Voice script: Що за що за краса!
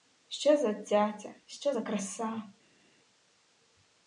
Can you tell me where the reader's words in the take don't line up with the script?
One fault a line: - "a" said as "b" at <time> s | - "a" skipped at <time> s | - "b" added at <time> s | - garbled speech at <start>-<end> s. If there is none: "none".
- "цяця" added at 0.7 s